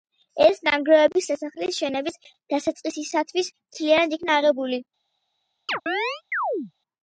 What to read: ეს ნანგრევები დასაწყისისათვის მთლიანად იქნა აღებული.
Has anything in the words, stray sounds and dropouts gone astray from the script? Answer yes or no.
yes